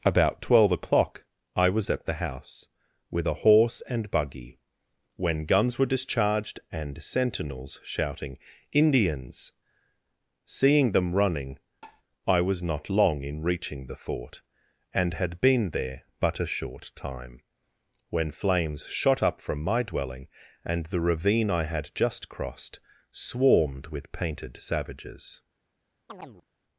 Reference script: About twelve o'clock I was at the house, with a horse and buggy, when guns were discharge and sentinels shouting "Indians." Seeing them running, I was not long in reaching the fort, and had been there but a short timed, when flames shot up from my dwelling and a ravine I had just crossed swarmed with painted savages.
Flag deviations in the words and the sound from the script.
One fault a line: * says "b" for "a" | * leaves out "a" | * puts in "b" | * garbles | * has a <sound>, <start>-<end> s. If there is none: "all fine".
* says "discharged" for "discharge"
* has a tap, 11.8-12.0 s
* says "time" for "timed"
* says "the" for "a"
* has a chirp, 26.1-26.5 s